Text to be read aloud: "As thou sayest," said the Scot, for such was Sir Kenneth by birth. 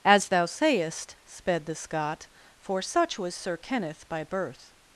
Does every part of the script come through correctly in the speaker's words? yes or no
no